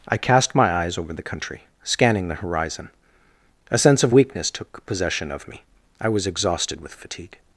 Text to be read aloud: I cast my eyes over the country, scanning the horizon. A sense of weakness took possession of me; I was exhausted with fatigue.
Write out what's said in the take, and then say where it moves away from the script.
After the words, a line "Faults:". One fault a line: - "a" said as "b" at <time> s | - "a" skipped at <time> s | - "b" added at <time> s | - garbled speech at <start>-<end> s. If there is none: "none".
I cast my eyes over the country, scanning the horizon. A sense of weakness took possession of me; I was exhausted with fatigue.
Faults:
none